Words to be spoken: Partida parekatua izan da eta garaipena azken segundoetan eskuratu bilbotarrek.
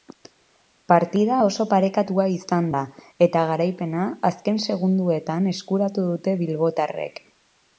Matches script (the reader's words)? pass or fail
fail